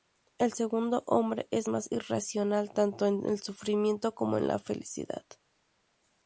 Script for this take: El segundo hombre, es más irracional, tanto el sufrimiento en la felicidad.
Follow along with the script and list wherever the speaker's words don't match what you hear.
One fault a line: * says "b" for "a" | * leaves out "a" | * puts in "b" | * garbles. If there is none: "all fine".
* puts in "en"
* puts in "como"